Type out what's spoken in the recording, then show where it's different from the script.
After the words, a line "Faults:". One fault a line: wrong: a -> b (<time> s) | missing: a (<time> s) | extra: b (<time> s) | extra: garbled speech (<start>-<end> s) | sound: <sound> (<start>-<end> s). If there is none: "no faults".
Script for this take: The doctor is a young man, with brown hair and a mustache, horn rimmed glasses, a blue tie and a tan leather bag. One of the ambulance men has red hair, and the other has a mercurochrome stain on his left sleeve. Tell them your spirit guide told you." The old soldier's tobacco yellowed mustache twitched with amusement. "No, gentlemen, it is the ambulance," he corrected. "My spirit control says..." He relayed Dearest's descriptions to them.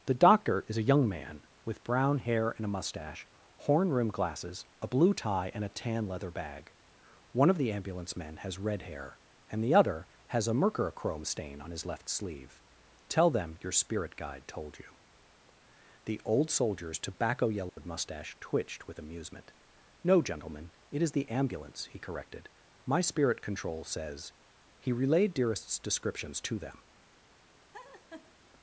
The doctor is a young man, with brown hair and a mustache, horn rimmed glasses, a blue tie and a tan leather bag. One of the ambulance men has red hair, and the other has a mercurochrome stain on his left sleeve. Tell them your spirit guide told you." The old soldier's tobacco yellowed mustache twitched with amusement. "No, gentlemen, it is the ambulance," he corrected. "My spirit control says..." He relayed Dearest's descriptions to them.
Faults:
sound: dropout (17.7-17.8 s)
sound: laugh (27.7-28.3 s)